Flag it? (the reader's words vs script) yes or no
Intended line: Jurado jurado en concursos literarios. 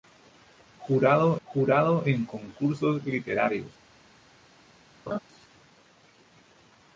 no